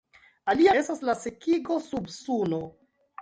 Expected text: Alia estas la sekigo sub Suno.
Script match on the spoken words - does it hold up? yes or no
yes